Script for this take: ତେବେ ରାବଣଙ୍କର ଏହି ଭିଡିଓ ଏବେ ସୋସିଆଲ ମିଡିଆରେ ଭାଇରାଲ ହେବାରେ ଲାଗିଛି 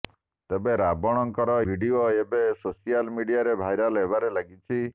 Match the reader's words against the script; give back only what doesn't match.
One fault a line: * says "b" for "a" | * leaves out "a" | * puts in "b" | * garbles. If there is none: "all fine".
* leaves out "ଏହି"